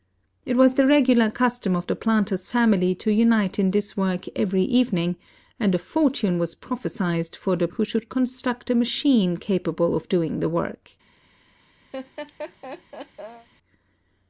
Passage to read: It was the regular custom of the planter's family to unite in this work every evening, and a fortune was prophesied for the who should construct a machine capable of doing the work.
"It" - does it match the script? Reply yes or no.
yes